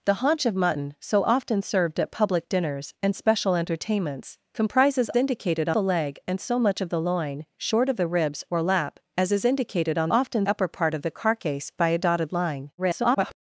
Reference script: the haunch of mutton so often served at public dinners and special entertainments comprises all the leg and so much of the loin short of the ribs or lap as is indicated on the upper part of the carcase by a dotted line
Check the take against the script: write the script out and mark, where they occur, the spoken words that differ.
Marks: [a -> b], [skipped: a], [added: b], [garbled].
the haunch of mutton so often served at public dinners and special entertainments comprises [all -> indicated] the leg and so much of the loin short of the ribs or lap as is indicated on [the -> often] upper part of the carcase by a dotted line [garbled]